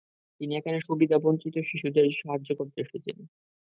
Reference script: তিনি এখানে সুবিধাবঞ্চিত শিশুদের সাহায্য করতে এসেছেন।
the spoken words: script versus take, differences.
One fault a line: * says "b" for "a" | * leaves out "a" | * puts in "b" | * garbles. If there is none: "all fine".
all fine